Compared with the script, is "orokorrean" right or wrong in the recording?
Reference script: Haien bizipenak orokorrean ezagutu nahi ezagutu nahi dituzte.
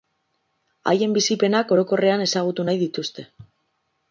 right